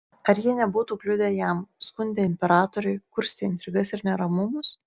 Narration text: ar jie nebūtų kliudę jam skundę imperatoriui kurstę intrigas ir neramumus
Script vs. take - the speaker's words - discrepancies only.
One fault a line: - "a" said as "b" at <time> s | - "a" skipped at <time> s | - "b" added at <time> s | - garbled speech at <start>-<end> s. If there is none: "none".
none